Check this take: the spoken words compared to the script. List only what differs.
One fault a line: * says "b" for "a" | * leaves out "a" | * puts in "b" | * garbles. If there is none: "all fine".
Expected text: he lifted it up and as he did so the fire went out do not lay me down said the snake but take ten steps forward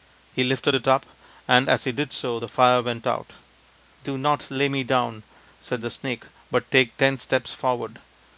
all fine